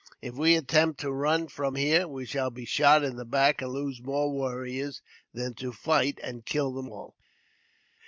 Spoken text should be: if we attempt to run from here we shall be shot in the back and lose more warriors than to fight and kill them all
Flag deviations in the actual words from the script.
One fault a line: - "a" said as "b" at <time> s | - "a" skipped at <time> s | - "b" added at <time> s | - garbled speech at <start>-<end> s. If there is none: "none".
none